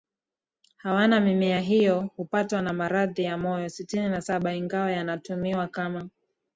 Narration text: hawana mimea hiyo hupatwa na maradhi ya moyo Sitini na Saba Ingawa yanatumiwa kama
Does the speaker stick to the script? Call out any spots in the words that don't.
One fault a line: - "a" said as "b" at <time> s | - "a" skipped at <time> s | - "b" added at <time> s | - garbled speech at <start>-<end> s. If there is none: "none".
none